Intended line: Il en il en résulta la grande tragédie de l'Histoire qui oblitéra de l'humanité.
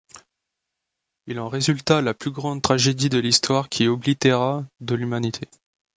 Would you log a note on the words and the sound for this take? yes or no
yes